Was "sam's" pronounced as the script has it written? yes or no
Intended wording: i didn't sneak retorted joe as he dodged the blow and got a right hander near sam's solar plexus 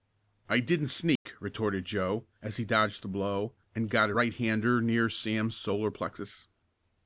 yes